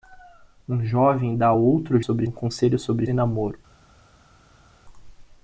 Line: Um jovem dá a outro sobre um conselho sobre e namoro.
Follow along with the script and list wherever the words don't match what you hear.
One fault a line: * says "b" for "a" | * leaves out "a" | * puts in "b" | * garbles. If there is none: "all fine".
all fine